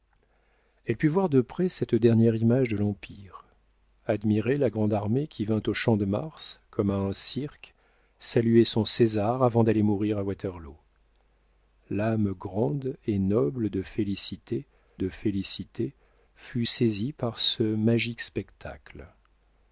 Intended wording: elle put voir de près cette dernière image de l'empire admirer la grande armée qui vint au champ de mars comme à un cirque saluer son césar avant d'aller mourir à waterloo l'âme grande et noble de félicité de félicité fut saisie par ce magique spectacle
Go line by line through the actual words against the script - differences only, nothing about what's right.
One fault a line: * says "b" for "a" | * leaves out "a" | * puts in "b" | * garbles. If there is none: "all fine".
all fine